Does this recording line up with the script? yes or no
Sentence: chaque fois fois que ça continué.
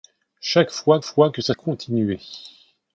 yes